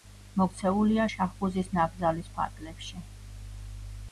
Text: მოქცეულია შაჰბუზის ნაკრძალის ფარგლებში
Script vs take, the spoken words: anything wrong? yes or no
no